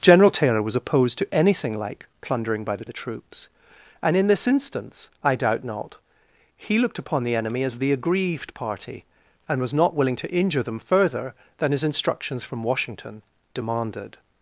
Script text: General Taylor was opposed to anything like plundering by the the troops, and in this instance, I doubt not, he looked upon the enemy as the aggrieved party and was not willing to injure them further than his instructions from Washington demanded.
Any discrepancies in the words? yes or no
no